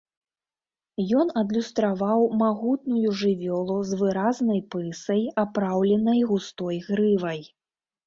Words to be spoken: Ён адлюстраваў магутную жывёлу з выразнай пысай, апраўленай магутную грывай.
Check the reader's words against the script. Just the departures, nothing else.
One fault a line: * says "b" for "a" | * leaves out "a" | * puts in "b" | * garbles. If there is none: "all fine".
* says "густой" for "магутную"